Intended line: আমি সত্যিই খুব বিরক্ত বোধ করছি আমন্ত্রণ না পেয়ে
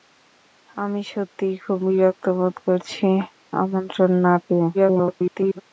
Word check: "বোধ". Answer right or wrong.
right